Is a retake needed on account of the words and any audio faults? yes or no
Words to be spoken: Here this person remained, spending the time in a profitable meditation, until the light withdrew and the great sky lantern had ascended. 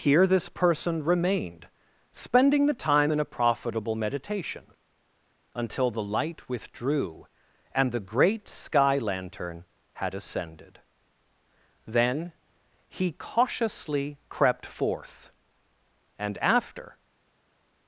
yes